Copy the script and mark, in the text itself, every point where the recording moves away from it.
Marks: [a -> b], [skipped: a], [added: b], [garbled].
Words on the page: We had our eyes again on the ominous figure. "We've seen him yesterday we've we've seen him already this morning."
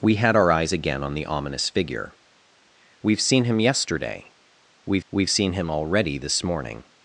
We had our eyes again on the ominous figure. "We've seen him yesterday we've we've seen him already this morning."